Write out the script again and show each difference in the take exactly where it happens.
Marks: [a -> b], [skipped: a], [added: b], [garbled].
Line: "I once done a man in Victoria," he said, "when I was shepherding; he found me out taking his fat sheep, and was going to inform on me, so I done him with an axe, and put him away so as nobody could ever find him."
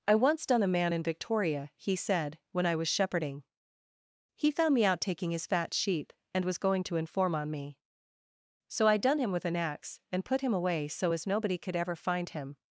"I once done a man in Victoria," he said, "when I was shepherding; he found me out taking his fat sheep, and was going to inform on me, so I done him with an axe, and put him away so as nobody could ever find him."